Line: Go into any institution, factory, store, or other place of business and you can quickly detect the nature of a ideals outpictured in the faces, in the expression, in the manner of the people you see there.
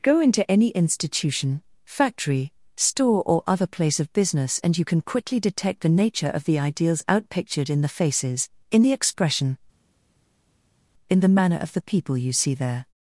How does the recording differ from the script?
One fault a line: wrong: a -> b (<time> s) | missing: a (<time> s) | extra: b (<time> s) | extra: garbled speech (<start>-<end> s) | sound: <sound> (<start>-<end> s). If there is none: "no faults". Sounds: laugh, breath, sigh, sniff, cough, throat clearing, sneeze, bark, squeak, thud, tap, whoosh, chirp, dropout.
wrong: a -> the (6.5 s)